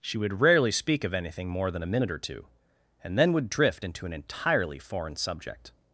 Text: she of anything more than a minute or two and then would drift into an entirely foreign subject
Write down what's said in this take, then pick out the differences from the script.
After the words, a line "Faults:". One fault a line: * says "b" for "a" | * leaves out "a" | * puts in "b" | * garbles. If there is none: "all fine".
she would rarely speak of anything more than a minute or two and then would drift into an entirely foreign subject
Faults:
* puts in "would rarely speak"